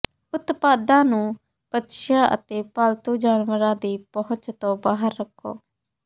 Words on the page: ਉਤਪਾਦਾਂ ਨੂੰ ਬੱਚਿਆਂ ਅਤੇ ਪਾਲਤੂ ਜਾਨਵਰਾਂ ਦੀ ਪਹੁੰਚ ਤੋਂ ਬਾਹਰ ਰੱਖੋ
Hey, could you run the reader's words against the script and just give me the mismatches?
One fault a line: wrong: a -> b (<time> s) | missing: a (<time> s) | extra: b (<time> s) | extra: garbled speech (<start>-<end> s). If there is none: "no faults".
no faults